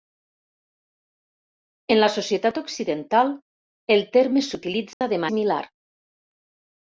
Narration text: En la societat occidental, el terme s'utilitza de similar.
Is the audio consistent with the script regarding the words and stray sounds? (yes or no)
no